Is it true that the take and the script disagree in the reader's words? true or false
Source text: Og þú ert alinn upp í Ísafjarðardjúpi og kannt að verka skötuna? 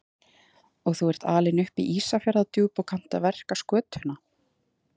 false